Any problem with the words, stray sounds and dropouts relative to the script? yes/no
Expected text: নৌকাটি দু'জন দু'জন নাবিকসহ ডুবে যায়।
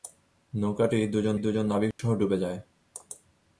yes